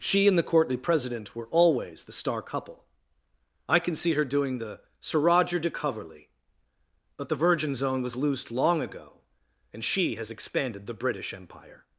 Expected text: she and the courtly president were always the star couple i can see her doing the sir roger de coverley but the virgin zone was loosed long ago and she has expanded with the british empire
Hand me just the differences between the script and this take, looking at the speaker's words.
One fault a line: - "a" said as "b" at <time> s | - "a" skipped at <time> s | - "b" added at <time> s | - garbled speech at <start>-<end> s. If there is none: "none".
- "with" skipped at 10.9 s